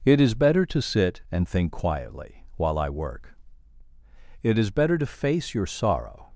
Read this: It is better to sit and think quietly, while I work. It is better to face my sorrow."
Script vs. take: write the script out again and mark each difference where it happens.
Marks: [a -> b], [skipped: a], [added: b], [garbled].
It is better to sit and think quietly, while I work. It is better to face [my -> your] sorrow."